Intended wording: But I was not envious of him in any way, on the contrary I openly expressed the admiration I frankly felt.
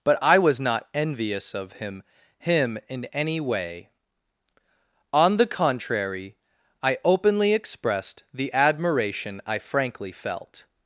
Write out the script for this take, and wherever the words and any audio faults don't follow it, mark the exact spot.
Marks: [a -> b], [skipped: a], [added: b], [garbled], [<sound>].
But I was not envious of him [added: him] in any way, on the contrary I openly expressed the admiration I frankly felt.